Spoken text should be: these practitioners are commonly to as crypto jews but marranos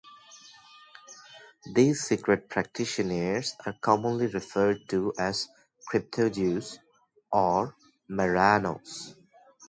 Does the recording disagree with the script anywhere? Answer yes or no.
yes